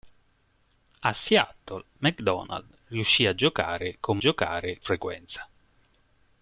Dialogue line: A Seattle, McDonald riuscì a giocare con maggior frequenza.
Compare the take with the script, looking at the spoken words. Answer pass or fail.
fail